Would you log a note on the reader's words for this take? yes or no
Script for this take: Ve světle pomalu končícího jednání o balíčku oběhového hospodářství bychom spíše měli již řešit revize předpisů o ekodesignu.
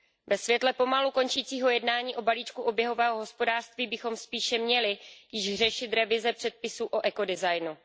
no